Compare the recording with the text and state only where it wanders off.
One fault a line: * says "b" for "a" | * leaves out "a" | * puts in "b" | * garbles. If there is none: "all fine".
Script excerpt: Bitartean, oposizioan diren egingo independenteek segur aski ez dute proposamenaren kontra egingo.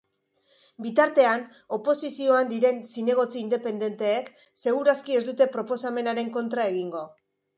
* says "zinegotzi" for "egingo"